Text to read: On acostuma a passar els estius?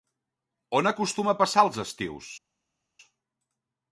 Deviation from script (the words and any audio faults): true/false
false